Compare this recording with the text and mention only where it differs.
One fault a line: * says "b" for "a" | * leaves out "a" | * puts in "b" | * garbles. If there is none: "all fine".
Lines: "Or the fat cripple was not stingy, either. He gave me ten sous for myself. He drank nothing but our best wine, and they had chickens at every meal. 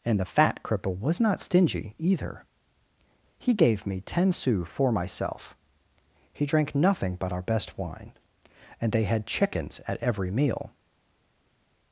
* says "And" for "Or"